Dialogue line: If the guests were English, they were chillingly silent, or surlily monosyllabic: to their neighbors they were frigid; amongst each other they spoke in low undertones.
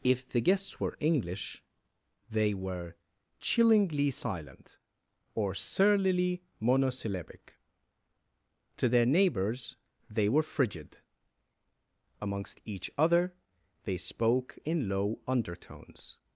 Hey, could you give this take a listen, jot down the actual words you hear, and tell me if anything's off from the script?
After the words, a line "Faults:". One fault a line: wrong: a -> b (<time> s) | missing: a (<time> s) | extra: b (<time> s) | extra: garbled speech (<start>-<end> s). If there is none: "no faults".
If the guests were English, they were chillingly silent, or surlily monosyllabic: to their neighbors they were frigid; amongst each other they spoke in low undertones.
Faults:
no faults